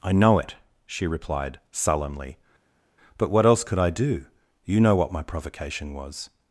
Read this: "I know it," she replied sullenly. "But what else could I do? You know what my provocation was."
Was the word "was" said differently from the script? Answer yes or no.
no